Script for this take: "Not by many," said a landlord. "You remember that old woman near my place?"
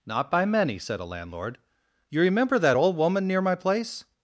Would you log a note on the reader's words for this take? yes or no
no